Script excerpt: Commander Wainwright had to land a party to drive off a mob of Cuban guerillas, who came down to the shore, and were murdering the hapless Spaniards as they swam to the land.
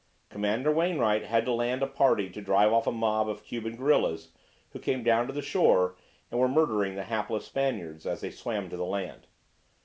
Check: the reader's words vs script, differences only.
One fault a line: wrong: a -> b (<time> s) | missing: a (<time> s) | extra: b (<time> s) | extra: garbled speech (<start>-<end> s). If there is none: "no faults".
no faults